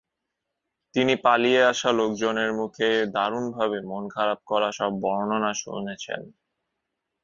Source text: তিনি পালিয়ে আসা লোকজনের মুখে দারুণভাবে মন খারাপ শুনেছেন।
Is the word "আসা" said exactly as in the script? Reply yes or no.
yes